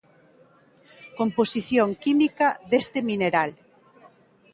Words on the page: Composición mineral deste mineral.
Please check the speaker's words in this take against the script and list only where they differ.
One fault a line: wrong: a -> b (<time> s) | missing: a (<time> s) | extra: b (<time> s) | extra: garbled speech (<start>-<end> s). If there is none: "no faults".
wrong: mineral -> química (2.0 s)